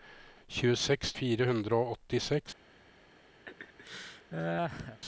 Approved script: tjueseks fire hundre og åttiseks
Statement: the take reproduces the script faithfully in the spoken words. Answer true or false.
true